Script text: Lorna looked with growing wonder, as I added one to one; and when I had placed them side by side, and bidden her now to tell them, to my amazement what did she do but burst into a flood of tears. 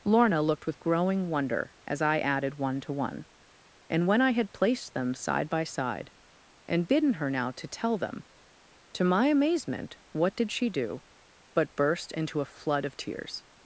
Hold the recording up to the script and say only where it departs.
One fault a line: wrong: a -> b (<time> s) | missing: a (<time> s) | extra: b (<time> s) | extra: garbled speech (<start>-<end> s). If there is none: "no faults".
no faults